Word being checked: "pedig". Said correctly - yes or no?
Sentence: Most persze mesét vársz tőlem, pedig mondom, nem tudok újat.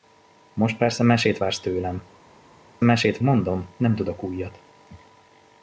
no